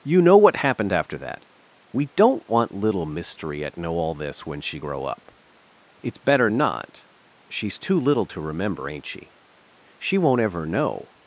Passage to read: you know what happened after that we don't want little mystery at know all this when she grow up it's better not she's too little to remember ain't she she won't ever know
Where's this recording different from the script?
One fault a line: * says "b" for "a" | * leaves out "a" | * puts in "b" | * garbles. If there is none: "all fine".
all fine